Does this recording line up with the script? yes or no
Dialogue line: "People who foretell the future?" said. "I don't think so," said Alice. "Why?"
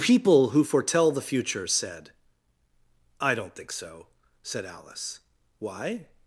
yes